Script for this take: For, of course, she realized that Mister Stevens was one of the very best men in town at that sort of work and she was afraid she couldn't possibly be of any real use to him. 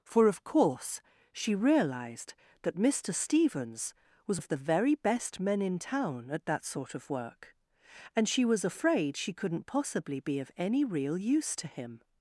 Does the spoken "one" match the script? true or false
false